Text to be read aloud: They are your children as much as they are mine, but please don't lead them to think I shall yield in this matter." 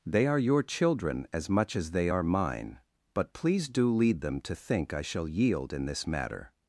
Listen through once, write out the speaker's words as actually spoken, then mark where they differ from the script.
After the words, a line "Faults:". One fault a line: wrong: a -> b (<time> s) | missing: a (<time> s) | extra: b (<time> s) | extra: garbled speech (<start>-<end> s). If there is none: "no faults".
They are your children as much as they are mine, but please do lead them to think I shall yield in this matter."
Faults:
wrong: don't -> do (3.7 s)